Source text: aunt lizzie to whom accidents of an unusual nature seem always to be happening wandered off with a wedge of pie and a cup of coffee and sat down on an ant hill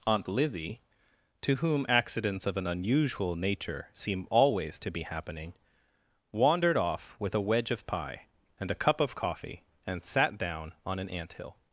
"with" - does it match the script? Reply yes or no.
yes